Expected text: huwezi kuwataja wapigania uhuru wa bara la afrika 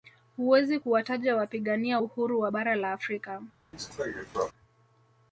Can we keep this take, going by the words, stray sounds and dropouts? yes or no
no